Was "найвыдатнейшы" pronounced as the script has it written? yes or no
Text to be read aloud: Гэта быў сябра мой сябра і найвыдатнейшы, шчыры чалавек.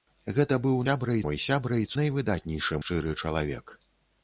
yes